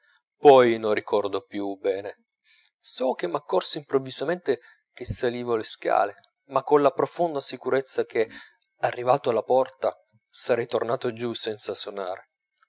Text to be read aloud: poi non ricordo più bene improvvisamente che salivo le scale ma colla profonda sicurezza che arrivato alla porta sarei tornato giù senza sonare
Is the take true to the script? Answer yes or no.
no